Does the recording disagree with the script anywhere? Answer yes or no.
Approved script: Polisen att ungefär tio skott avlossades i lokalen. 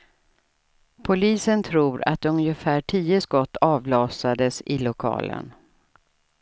yes